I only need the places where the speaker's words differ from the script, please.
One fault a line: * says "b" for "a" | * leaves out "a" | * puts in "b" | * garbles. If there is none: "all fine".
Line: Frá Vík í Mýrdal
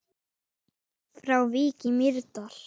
all fine